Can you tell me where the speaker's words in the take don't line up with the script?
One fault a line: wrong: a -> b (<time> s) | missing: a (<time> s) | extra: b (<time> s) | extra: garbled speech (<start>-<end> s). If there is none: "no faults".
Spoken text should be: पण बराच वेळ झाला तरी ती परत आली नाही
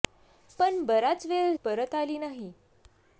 missing: झाला तरी ती (1.5 s)